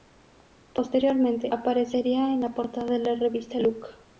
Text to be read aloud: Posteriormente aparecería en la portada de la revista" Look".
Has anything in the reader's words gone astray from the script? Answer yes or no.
no